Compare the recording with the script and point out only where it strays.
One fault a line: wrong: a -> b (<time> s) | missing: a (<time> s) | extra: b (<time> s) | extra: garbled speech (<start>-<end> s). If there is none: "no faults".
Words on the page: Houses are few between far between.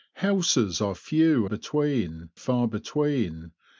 no faults